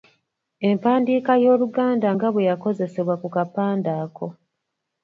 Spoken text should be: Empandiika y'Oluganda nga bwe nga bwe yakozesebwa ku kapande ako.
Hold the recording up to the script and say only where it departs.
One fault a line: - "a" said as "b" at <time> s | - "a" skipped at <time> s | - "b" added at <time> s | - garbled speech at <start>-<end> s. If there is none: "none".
- "nga bwe" skipped at 2.5 s